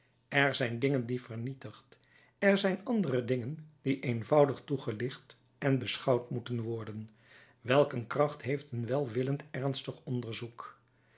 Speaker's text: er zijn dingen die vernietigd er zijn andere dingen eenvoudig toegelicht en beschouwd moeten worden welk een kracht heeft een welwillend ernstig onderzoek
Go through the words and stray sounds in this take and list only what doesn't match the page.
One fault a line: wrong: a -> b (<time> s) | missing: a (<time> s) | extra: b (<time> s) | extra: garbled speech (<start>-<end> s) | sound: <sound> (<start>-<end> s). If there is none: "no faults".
extra: die (3.8 s)